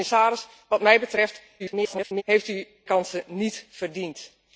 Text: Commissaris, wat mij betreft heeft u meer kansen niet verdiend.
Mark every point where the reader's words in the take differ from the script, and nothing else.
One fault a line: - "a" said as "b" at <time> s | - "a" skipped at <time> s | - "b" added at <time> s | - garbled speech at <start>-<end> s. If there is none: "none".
- garbled speech at 1.6-2.2 s
- "meer" skipped at 2.7 s